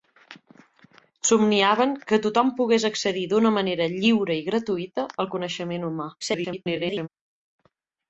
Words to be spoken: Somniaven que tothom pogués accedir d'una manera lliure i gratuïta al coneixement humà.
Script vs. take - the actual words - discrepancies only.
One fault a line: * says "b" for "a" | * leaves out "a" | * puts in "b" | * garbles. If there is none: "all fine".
* garbles